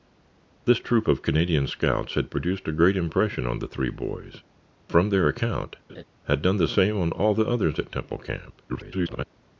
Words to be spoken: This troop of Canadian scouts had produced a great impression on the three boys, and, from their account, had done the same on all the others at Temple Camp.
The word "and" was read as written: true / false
false